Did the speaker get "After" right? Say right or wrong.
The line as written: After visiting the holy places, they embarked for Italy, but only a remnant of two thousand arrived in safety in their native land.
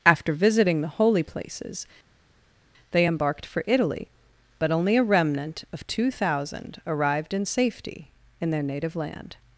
right